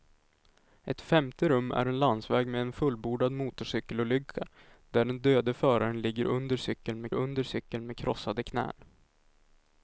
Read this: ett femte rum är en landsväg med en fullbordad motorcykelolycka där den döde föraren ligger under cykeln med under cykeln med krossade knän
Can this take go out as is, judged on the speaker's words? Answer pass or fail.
pass